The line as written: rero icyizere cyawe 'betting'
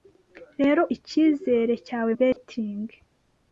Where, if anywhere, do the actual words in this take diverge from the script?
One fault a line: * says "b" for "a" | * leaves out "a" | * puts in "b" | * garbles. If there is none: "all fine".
all fine